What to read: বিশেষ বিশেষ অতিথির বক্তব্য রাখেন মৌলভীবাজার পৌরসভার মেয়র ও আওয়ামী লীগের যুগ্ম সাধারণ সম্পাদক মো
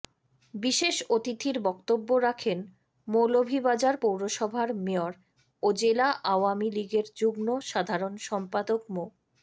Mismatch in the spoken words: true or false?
true